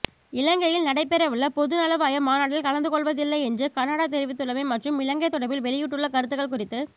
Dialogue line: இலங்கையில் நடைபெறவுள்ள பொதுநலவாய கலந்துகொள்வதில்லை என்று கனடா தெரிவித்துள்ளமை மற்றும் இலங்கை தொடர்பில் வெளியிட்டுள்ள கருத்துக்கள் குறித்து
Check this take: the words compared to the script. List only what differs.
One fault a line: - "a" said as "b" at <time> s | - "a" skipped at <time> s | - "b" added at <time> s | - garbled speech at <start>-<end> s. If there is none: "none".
- "மாநாட்டில்" added at 2.2 s